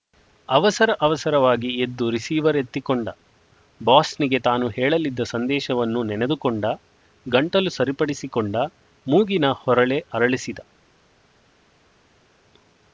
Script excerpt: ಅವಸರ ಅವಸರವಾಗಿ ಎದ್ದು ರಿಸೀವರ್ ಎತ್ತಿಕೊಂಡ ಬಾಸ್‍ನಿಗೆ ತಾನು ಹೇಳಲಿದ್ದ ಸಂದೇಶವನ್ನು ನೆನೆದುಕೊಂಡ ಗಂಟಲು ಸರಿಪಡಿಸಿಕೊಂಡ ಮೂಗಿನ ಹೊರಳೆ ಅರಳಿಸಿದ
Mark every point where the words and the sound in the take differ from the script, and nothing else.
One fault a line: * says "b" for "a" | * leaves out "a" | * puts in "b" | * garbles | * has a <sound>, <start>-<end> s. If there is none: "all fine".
all fine